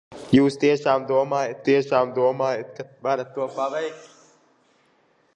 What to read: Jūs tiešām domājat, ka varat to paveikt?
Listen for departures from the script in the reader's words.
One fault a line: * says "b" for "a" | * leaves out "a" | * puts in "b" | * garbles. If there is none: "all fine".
* puts in "tiešām domājat"